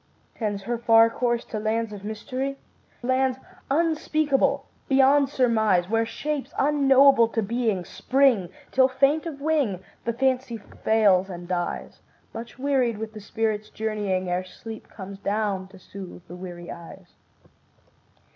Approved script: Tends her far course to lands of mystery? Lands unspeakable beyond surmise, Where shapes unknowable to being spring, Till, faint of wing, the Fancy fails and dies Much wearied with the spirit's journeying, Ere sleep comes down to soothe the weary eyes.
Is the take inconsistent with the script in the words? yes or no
no